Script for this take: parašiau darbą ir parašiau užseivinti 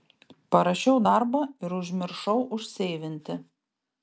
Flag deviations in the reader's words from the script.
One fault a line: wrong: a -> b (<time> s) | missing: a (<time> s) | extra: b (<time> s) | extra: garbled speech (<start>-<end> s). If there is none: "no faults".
wrong: parašiau -> užmiršau (1.8 s)